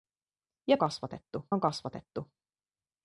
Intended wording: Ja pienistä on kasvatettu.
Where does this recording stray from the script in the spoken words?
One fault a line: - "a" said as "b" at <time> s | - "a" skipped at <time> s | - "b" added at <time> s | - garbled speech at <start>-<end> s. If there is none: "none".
- "pienistä" said as "kasvatettu" at 0.8 s